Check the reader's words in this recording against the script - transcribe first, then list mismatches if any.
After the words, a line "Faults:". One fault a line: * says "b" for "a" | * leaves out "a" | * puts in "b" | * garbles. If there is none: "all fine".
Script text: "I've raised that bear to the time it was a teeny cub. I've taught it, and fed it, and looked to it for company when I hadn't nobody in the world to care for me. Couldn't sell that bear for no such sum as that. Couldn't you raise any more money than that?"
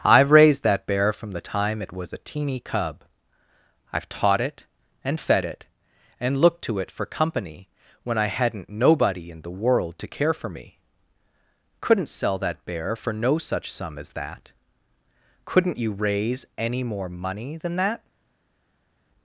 "I've raised that bear from the time it was a teeny cub. I've taught it, and fed it, and looked to it for company when I hadn't nobody in the world to care for me. Couldn't sell that bear for no such sum as that. Couldn't you raise any more money than that?"
Faults:
* says "from" for "to"